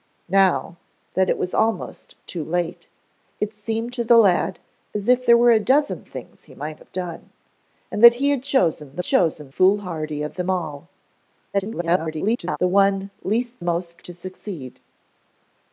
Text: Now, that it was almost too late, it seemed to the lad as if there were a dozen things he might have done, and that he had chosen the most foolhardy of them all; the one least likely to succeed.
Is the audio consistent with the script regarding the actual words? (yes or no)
no